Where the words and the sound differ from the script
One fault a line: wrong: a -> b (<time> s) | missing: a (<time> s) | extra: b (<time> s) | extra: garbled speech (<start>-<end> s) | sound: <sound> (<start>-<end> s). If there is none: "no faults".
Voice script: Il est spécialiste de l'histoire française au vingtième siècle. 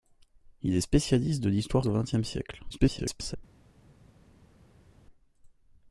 missing: française (1.8 s)
extra: garbled speech (2.7-3.4 s)